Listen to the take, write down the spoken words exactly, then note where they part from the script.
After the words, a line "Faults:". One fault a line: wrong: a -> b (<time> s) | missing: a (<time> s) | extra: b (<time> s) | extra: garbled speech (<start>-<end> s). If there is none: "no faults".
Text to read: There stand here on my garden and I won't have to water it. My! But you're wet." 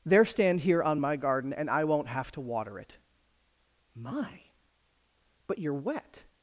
There stand here on my garden and I won't have to water it. My! But you're wet."
Faults:
no faults